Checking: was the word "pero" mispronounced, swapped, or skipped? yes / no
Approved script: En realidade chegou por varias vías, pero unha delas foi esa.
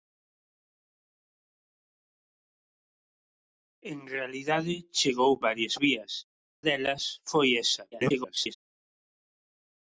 yes